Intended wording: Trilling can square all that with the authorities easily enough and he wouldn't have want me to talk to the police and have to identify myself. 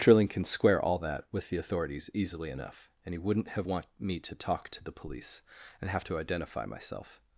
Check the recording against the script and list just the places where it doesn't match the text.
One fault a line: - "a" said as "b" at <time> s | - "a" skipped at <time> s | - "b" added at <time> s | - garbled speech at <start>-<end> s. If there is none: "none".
none